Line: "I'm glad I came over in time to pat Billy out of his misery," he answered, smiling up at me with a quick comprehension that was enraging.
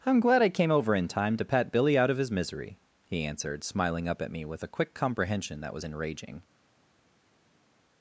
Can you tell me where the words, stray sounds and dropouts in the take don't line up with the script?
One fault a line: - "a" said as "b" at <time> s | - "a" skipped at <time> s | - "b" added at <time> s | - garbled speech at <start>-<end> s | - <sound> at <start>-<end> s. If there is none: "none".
none